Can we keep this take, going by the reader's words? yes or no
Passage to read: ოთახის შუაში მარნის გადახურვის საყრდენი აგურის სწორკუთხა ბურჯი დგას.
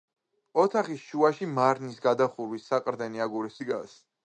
no